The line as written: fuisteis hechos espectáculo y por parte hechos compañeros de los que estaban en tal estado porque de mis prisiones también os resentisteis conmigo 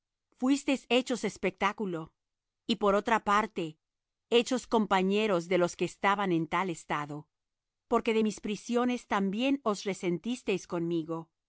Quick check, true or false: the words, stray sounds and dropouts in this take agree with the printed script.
false